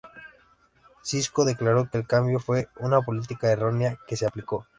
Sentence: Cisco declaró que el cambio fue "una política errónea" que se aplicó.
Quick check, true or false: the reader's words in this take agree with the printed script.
true